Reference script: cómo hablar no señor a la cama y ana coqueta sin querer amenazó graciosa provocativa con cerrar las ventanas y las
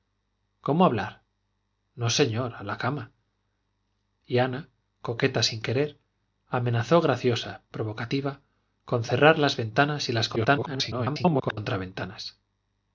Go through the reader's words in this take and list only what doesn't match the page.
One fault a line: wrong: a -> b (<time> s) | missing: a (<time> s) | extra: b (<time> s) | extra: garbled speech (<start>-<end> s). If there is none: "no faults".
extra: garbled speech (10.4-11.6 s)